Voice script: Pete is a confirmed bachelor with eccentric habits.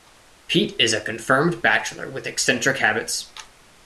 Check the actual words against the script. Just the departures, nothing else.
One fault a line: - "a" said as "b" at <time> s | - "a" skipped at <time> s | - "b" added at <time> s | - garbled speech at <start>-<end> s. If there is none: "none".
none